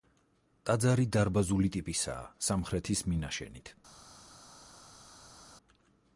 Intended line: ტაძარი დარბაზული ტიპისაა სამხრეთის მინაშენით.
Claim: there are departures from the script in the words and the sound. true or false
false